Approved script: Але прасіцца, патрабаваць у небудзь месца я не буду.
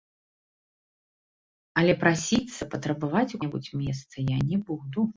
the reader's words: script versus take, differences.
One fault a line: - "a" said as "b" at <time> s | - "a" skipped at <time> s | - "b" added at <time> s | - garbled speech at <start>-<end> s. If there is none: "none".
none